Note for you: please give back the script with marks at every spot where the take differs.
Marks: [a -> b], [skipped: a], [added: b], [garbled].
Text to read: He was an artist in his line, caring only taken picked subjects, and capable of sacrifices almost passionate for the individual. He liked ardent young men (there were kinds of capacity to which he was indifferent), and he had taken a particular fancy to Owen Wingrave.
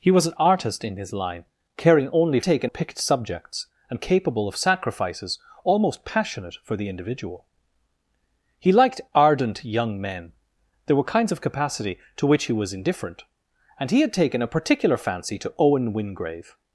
He was an artist in his line, caring only taken picked subjects, and capable of sacrifices almost passionate for the individual. He liked ardent young men (there were kinds of capacity to which he was indifferent), and he had taken a particular fancy to Owen Wingrave.